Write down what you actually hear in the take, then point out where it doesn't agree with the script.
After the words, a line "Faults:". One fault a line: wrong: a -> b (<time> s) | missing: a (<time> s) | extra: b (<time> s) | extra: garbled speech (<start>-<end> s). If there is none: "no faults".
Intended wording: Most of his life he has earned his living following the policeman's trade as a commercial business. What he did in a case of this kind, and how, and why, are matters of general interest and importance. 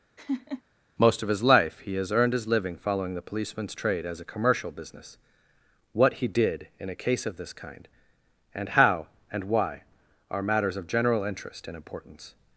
Most of his life he has earned his living following the policeman's trade as a commercial business. What he did in a case of this kind, and how, and why, are matters of general interest and importance.
Faults:
no faults